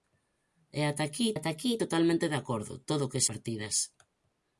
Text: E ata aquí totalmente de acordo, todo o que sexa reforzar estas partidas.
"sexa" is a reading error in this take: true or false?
true